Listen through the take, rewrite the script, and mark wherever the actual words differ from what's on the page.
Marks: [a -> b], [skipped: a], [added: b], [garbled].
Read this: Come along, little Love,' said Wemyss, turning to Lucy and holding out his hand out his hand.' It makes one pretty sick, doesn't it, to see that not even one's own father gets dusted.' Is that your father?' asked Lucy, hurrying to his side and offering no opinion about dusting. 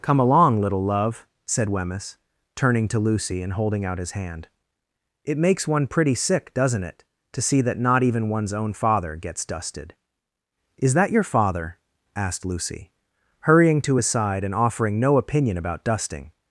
Come along, little Love,' said Wemyss, turning to Lucy and holding out his hand [skipped: out his hand.'] It makes one pretty sick, doesn't it, to see that not even one's own father gets dusted.' Is that your father?' asked Lucy, hurrying to his side and offering no opinion about dusting.